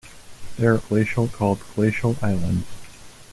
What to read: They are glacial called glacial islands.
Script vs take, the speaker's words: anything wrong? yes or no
no